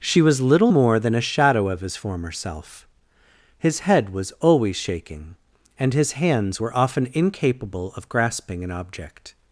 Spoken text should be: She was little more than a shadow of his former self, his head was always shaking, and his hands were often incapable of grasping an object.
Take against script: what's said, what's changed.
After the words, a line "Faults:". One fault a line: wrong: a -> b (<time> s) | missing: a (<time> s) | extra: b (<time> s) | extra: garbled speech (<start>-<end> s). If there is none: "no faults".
She was little more than a shadow of his former self, his head was always shaking, and his hands were often incapable of grasping an object.
Faults:
no faults